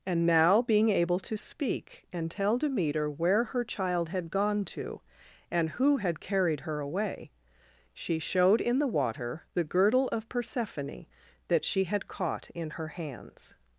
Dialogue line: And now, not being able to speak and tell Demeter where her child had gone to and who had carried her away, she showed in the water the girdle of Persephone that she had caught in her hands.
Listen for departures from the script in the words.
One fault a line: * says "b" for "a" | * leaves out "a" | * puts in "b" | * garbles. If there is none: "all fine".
* leaves out "not"